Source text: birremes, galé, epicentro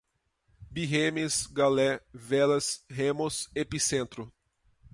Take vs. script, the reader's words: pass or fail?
fail